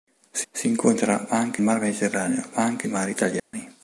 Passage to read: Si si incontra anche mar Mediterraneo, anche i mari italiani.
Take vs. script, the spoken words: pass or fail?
pass